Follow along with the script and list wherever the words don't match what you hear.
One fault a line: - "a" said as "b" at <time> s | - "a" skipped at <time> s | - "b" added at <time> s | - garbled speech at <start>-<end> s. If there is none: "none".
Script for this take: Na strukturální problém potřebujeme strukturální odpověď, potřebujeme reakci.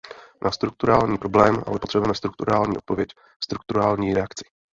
- "ale" added at 1.7 s
- "potřebujeme" said as "strukturální" at 3.4 s